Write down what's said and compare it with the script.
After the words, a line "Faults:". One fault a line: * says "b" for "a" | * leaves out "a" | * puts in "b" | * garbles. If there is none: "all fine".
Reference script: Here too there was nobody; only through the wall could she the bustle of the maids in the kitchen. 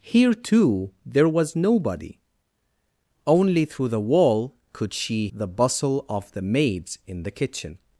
Here too there was nobody; only through the wall could she the bustle of the maids in the kitchen.
Faults:
all fine